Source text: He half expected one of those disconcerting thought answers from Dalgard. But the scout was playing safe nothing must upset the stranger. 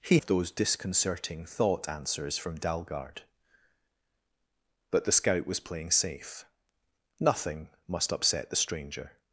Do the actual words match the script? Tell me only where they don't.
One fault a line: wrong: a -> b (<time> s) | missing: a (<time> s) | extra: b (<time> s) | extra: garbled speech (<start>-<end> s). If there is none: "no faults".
missing: half expected one (0.2 s)